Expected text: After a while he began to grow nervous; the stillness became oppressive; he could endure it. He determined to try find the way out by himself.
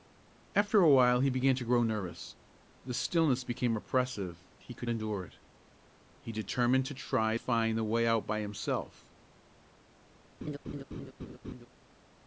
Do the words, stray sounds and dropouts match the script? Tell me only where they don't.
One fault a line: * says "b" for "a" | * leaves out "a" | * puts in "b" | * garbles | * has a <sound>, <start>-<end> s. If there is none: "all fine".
* has a laugh, 10.4-11.7 s